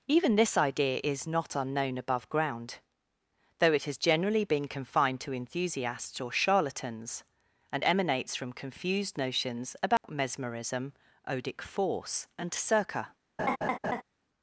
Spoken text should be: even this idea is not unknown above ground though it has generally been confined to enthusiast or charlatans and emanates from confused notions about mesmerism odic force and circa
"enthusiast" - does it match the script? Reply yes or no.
no